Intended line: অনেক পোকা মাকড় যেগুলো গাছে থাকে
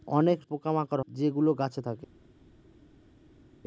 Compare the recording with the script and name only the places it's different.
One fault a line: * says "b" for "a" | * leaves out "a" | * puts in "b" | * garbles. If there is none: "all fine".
all fine